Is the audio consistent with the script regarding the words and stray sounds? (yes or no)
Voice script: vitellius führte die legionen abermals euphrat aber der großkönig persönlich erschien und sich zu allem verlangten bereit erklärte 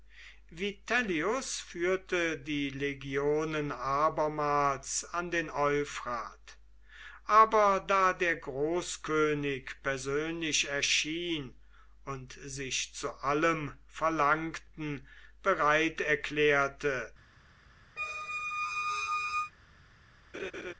no